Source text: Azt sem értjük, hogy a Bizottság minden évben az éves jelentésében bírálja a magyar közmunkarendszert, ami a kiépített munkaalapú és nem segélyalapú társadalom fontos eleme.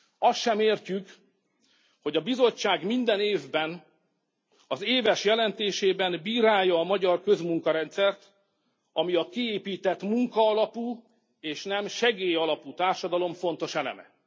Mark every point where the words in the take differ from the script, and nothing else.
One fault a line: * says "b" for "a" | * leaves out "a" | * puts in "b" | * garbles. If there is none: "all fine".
all fine